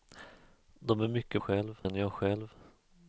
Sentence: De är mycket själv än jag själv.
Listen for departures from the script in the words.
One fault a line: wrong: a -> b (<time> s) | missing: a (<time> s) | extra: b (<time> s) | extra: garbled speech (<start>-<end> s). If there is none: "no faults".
no faults